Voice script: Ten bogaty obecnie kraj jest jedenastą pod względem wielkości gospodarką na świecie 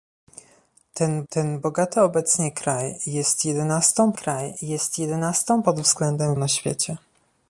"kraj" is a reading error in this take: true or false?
false